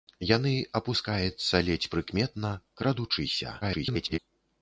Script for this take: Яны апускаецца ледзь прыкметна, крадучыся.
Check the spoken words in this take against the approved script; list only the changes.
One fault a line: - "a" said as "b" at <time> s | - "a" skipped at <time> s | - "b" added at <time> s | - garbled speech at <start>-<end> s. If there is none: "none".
- garbled speech at 3.6-4.2 s